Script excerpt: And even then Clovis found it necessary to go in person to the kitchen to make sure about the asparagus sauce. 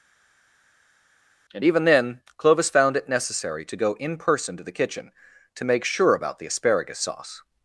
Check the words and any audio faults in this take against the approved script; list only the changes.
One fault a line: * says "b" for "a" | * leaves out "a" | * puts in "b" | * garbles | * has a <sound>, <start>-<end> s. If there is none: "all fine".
all fine